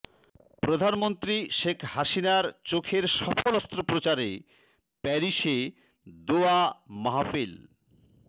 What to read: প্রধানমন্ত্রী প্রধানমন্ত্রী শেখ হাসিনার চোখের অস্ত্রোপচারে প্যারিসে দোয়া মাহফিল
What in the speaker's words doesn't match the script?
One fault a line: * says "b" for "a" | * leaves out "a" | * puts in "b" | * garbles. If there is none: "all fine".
* leaves out "প্রধানমন্ত্রী"
* puts in "সফল"